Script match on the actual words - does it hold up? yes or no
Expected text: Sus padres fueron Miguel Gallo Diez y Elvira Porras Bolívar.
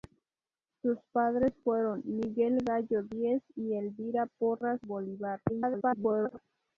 no